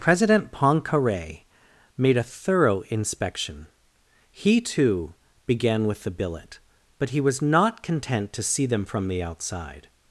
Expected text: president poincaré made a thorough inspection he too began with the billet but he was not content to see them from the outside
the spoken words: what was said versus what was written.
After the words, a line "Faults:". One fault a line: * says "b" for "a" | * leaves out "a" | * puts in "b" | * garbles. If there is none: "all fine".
president poincaré made a thorough inspection he too began with the billet but he was not content to see them from the outside
Faults:
all fine